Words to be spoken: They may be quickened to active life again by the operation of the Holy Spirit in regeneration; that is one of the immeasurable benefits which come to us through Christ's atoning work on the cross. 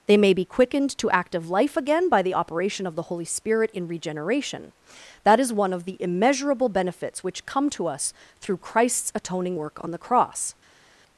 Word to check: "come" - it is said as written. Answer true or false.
true